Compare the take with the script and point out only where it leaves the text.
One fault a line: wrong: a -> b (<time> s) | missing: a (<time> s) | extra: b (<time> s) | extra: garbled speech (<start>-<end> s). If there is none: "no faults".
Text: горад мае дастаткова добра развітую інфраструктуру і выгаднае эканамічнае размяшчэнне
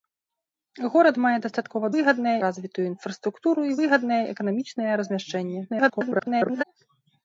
wrong: добра -> выгаднае (1.9 s)
extra: garbled speech (5.7-6.6 s)